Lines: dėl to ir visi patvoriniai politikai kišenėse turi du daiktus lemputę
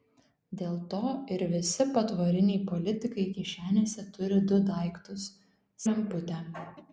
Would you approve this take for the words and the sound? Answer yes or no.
yes